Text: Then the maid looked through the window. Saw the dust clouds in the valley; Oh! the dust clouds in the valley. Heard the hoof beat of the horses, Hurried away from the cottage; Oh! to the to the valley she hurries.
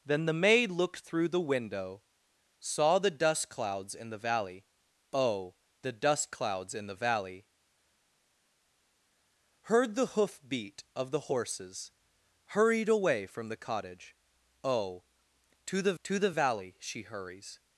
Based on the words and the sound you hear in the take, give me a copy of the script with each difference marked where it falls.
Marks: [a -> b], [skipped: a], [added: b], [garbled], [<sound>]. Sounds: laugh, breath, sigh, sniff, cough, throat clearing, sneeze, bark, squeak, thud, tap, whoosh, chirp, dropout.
Then the maid looked through the window. Saw the dust clouds in the valley; Oh! the dust clouds in the valley. Heard the hoof beat of the horses, Hurried away from the cottage; Oh! to the to the valley she hurries.